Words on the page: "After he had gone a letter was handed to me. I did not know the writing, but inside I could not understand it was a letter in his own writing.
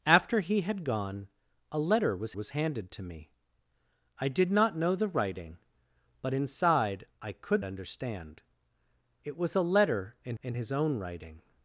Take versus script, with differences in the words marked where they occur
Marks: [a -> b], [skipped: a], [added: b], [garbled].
"After he had gone a letter was [added: was] handed to me. I did not know the writing, but inside I could [skipped: not] understand it was a letter in [added: in] his own writing.